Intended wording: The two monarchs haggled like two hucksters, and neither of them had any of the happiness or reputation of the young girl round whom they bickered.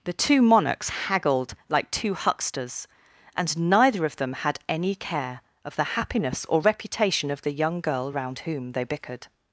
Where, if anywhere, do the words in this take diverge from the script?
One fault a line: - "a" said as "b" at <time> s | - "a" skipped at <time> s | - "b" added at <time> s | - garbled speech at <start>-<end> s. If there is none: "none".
- "care" added at 5.0 s